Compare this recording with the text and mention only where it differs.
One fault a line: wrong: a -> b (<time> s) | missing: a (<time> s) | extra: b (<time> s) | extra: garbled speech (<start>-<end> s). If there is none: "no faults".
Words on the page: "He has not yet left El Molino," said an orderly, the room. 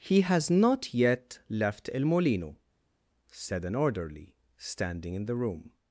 extra: standing in (4.6 s)